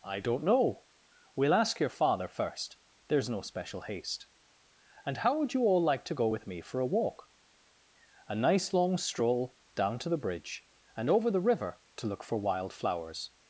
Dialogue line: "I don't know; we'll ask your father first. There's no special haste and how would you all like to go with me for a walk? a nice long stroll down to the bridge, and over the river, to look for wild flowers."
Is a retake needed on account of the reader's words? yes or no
no